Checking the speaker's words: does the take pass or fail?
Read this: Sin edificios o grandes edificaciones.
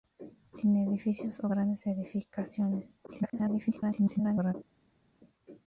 fail